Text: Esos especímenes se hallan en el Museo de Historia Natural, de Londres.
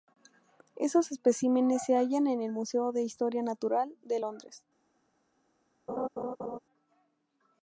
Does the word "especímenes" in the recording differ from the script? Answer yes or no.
no